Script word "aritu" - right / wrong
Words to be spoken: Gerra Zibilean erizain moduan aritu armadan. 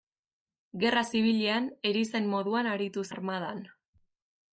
right